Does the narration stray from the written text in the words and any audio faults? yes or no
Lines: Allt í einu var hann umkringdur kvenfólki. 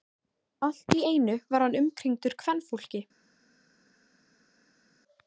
no